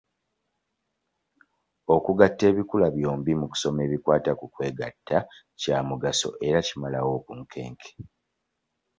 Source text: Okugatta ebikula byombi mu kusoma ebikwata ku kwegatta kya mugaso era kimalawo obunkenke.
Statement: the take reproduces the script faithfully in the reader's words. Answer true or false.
true